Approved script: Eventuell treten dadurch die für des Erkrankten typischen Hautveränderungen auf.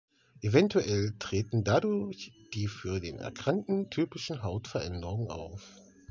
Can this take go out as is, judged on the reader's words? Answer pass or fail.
fail